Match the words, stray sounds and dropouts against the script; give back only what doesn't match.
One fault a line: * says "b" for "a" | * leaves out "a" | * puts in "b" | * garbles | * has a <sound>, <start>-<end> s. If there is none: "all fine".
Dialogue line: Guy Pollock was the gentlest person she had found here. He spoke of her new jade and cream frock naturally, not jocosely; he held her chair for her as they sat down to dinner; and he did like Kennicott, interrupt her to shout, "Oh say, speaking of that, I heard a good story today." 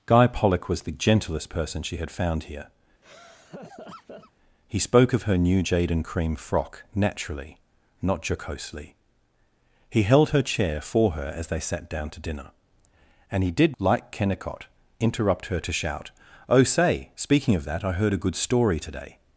* has a laugh, 3.0-4.3 s